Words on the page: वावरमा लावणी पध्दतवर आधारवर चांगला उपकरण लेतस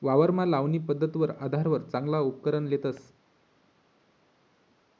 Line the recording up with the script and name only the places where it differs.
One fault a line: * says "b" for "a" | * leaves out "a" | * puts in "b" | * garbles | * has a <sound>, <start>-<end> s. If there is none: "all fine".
all fine